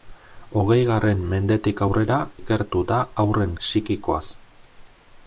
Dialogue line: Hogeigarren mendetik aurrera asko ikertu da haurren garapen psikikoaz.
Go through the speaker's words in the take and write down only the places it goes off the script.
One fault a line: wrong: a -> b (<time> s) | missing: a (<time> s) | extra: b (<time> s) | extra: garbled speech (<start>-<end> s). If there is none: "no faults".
missing: asko (2.2 s)
missing: garapen (3.6 s)